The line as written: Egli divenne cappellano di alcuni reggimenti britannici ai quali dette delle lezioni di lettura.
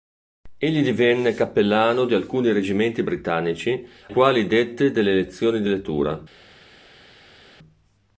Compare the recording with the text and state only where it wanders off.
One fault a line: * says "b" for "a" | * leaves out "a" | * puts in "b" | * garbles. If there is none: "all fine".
* leaves out "ai"